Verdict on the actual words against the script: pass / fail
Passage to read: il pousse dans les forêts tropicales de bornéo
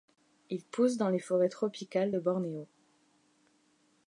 pass